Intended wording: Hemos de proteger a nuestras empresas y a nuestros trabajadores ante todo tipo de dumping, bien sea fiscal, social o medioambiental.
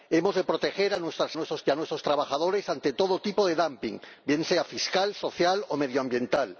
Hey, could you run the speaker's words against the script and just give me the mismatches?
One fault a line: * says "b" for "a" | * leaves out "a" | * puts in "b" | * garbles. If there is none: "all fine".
* says "nuestros" for "empresas"